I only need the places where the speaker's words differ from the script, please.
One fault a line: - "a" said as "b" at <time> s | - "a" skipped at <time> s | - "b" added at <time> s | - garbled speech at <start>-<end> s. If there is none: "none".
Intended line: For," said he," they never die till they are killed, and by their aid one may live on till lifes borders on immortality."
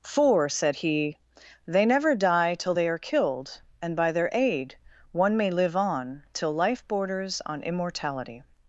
- "lifes" said as "life" at 6.5 s